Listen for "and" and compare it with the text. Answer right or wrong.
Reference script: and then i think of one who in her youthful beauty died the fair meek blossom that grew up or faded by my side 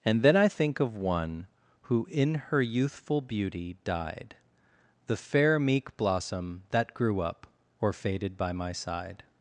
right